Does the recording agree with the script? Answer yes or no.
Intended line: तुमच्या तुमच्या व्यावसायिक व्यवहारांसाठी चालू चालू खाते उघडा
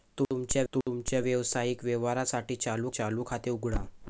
yes